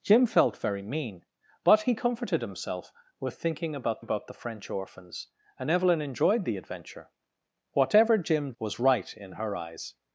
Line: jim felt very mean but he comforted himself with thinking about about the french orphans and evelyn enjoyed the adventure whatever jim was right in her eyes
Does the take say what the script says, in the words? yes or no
yes